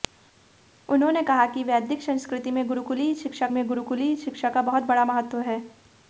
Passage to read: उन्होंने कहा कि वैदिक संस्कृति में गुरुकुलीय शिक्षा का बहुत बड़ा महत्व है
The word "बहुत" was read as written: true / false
true